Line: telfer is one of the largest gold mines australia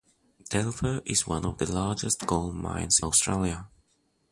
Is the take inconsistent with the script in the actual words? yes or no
no